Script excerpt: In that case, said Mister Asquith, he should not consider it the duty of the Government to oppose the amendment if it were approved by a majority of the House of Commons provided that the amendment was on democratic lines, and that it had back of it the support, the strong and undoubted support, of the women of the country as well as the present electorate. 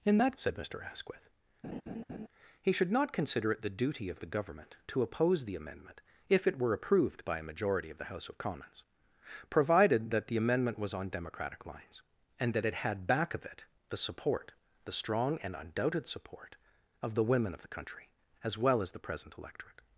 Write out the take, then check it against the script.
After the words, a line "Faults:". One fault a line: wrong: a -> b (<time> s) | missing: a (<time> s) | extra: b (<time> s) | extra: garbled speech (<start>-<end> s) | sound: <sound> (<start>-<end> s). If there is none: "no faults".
In that said Mister Asquith, he should not consider it the duty of the Government to oppose the amendment if it were approved by a majority of the House of Commons provided that the amendment was on democratic lines, and that it had back of it the support, the strong and undoubted support, of the women of the country as well as the present electorate.
Faults:
missing: case (0.4 s)
sound: laugh (1.6-2.3 s)